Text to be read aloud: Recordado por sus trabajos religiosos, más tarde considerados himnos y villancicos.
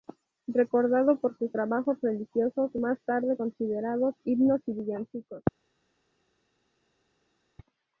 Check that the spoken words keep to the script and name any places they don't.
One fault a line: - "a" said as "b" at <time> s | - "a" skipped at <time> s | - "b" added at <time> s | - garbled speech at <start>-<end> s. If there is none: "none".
none